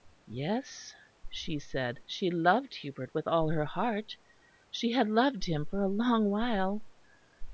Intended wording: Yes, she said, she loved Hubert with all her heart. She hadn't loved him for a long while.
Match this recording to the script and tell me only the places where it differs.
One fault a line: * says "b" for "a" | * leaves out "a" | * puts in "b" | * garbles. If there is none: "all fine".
* says "had" for "hadn't"